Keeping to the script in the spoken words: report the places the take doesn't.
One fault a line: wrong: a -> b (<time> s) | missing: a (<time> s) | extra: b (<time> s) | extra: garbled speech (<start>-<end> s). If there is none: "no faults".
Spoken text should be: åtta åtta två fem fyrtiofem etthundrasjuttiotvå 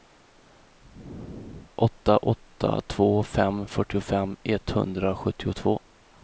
no faults